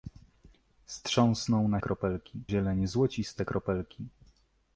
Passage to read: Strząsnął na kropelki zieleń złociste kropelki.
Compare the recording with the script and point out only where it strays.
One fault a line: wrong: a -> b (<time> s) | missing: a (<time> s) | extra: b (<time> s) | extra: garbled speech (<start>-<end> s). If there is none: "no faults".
no faults